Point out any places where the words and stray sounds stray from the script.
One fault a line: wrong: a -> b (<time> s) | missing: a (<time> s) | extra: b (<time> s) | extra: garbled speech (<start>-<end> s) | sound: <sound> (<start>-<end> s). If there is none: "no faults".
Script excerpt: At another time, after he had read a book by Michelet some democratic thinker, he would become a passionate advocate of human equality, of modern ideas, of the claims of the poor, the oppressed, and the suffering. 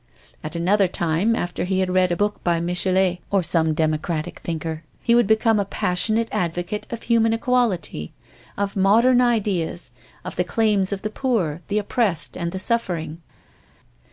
extra: or (3.3 s)